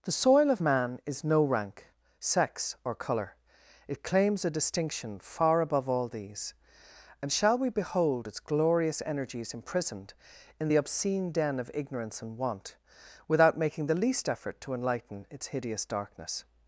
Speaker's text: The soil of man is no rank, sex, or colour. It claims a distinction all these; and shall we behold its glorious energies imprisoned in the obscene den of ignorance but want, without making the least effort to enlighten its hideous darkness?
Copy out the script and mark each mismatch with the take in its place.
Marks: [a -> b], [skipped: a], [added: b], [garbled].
The soil of man is no rank, sex, or colour. It claims a distinction [added: far above] all these; and shall we behold its glorious energies imprisoned in the obscene den of ignorance [but -> and] want, without making the least effort to enlighten its hideous darkness?